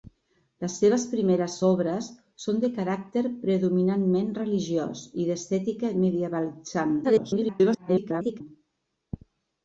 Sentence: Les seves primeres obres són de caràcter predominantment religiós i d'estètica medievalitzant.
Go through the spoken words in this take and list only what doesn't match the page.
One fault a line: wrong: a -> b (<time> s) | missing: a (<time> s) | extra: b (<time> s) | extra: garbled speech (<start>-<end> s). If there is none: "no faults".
extra: garbled speech (7.0-8.4 s)